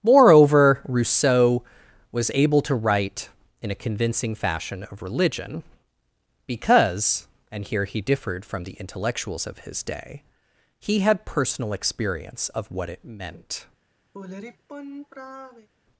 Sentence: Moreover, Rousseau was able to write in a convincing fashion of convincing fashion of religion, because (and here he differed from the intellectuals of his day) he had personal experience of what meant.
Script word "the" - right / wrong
right